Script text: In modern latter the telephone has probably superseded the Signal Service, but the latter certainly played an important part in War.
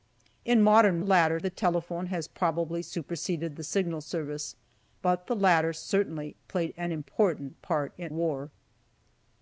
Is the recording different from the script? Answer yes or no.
no